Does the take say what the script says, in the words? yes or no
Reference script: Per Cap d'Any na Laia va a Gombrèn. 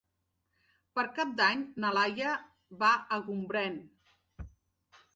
yes